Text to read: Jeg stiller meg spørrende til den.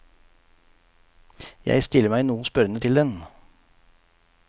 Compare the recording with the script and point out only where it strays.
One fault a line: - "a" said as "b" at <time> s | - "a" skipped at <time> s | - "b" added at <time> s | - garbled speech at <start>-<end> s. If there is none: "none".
- "noe" added at 2.2 s